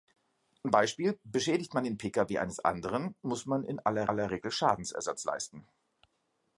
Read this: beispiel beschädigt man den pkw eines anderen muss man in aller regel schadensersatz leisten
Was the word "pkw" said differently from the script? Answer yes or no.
no